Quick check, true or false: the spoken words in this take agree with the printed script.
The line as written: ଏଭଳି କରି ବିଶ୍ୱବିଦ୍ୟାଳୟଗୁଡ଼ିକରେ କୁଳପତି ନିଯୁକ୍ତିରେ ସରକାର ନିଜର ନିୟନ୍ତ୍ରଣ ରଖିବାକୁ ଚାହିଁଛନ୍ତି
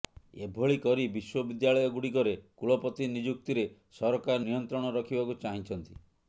false